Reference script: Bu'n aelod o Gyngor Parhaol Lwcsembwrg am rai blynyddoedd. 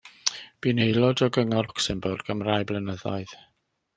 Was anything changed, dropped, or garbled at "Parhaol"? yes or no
yes